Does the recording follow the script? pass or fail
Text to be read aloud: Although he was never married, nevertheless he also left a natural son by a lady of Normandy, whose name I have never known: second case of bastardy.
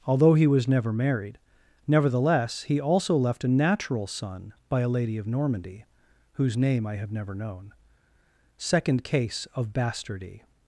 pass